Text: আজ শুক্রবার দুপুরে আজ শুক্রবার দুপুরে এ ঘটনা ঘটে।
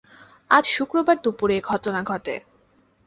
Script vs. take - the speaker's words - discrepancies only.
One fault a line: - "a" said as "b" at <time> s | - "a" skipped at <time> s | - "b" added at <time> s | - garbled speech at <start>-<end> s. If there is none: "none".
- "আজ শুক্রবার দুপুরে" skipped at 1.5 s